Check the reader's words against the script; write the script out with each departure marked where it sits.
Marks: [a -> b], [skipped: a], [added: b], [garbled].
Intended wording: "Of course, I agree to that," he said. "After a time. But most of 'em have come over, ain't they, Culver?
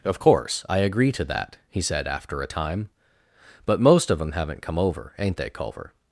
"Of course, I agree to that," he said. "After a time. But most of 'em [have -> haven't] come over, ain't they, Culver?